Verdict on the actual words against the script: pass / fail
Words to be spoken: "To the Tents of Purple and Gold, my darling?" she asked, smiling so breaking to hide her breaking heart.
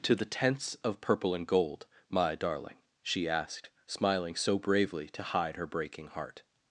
fail